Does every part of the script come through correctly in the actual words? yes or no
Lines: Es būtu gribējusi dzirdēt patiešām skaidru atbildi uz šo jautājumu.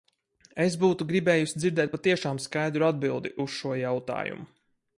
yes